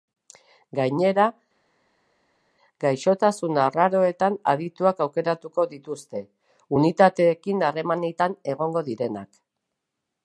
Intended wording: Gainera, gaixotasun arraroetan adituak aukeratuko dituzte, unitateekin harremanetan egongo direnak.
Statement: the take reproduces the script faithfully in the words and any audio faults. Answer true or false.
true